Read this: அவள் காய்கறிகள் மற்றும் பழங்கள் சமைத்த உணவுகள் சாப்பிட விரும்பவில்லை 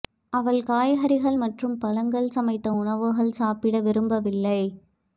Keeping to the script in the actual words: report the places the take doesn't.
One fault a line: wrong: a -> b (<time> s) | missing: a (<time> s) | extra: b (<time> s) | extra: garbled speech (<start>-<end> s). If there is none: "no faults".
no faults